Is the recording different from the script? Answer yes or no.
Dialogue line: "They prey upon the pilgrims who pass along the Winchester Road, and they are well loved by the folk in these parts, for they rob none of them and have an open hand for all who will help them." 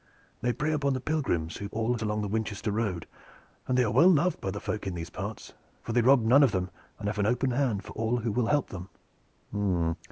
yes